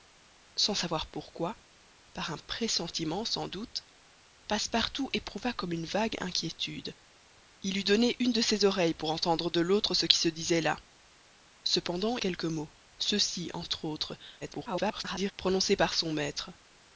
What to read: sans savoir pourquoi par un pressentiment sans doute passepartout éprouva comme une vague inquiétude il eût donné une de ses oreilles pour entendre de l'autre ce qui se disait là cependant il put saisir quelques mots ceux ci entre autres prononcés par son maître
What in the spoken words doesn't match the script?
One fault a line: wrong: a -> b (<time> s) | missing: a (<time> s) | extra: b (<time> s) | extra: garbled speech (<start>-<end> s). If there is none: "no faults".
missing: il put saisir (12.2 s)
extra: garbled speech (14.4-15.3 s)